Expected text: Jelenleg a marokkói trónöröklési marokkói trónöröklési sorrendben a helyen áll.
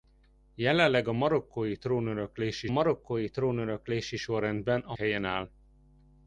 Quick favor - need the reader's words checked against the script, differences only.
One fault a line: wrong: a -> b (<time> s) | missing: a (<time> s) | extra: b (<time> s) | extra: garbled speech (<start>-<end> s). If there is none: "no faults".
no faults